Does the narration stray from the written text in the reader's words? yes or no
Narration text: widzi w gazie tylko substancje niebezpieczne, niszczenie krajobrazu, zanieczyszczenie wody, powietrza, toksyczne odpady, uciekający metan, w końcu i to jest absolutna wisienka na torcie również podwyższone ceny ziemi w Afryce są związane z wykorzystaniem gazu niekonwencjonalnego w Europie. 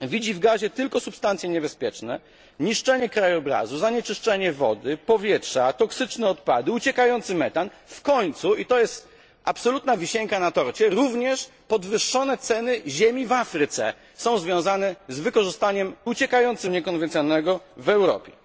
yes